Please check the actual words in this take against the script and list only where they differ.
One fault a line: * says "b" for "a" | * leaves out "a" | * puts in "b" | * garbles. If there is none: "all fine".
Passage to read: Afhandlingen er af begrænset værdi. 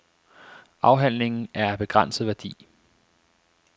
all fine